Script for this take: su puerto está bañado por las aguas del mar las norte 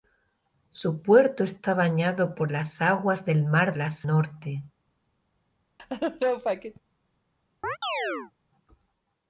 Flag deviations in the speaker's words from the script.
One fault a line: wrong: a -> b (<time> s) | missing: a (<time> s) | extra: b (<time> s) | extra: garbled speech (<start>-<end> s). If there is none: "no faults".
no faults